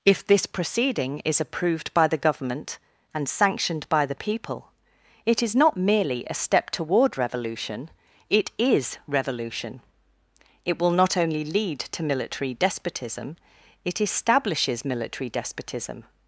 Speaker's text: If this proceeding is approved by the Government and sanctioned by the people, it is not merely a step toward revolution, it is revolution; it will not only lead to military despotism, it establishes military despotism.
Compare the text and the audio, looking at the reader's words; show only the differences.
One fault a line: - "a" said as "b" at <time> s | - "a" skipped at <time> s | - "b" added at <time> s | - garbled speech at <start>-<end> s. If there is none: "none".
none